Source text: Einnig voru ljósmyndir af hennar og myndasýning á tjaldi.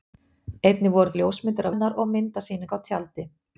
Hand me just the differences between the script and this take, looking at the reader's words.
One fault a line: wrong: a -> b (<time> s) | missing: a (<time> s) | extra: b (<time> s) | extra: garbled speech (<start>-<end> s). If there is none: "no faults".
no faults